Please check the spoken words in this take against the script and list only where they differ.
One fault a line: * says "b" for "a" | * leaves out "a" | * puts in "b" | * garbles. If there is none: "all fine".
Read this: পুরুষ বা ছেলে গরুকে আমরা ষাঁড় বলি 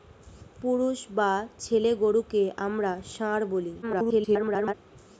* garbles